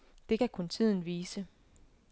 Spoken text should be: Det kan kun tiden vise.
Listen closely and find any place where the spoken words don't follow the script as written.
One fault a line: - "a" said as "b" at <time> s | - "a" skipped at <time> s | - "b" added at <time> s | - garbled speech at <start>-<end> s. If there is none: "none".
none